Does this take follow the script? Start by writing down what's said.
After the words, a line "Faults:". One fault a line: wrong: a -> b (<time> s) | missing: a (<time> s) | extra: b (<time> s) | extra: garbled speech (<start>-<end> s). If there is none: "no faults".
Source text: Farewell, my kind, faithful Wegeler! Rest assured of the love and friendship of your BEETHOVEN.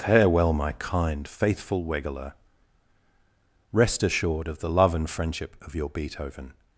Farewell, my kind, faithful Wegeler! Rest assured of the love and friendship of your BEETHOVEN.
Faults:
no faults